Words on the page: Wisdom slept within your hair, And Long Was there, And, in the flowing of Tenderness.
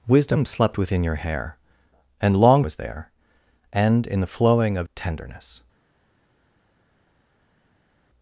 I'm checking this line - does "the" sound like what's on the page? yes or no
yes